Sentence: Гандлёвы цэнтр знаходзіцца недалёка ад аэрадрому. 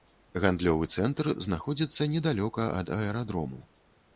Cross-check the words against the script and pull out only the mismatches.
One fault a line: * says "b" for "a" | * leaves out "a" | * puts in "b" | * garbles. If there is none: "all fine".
all fine